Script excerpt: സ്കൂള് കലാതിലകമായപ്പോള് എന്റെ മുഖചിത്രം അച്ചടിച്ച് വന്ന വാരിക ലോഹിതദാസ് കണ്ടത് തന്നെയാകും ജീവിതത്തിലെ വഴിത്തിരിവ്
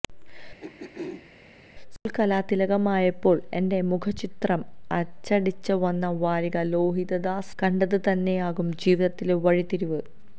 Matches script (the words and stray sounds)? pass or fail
fail